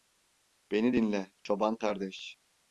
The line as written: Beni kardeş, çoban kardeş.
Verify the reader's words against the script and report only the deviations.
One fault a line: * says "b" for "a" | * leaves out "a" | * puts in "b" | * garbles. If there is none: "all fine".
* says "dinle" for "kardeş"